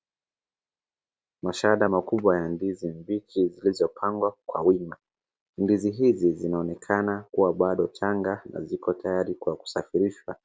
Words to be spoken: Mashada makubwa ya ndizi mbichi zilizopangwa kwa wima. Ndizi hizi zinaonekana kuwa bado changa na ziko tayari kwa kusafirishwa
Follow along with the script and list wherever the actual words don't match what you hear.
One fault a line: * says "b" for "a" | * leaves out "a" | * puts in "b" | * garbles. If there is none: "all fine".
all fine